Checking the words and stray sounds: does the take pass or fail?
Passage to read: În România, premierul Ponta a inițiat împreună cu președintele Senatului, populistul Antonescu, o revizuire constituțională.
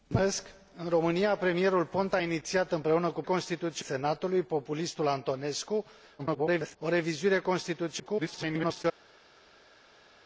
fail